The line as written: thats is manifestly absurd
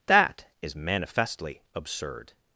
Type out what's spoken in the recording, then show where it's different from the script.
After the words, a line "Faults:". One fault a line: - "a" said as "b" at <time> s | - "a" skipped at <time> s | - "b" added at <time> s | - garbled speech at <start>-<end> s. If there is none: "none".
that is manifestly absurd
Faults:
- "thats" said as "that" at 0.1 s